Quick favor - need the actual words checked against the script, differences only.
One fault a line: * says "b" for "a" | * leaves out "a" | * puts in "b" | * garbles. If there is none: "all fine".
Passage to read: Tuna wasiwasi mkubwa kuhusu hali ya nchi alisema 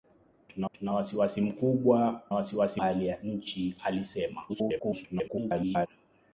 * puts in "tuna"
* says "wasiwasi" for "kuhusu"
* garbles